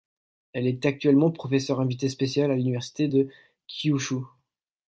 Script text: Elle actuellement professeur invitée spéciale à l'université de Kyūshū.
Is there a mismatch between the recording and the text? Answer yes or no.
yes